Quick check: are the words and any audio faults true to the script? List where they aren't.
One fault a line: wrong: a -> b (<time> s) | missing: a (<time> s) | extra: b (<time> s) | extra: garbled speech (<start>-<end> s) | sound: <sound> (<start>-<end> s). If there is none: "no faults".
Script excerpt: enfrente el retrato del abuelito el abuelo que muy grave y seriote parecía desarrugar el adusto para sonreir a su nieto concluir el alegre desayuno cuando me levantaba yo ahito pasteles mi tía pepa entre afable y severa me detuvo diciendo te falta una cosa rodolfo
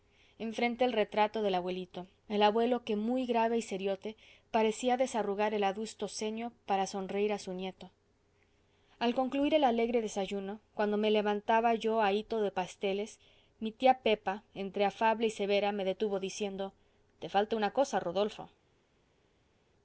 extra: ceño (6.1 s)
extra: al (9.0 s)
extra: de (12.4 s)